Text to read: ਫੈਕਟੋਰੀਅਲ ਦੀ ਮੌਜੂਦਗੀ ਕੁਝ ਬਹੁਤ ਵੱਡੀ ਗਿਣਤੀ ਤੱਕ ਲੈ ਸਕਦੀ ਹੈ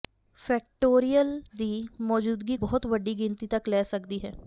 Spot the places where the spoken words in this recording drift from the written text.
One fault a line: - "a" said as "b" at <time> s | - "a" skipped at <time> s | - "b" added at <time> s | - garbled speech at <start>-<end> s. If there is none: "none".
- "ਕੁਝ" skipped at 2.6 s